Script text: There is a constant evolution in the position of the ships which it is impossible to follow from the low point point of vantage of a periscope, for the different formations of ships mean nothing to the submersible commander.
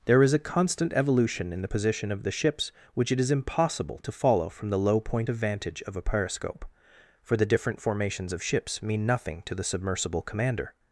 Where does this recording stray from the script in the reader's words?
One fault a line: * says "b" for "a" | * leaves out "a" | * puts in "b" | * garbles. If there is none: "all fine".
* leaves out "point"